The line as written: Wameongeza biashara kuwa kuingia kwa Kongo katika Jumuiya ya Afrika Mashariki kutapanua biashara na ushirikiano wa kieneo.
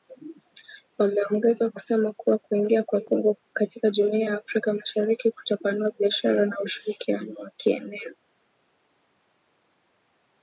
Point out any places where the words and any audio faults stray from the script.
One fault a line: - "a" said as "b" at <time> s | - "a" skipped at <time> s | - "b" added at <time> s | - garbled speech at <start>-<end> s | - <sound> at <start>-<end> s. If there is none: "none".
- "biashara" said as "kusema" at 1.7 s